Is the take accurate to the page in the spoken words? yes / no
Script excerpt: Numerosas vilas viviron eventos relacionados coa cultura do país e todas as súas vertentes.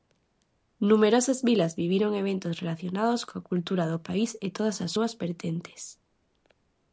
yes